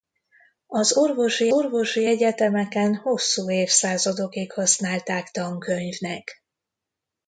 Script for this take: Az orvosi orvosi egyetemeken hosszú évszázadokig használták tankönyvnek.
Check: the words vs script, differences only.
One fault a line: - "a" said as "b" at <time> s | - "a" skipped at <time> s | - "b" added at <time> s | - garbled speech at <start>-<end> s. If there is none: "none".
none